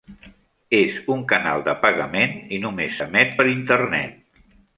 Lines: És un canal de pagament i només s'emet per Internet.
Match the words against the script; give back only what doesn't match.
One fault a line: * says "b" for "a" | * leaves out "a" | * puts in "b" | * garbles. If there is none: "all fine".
all fine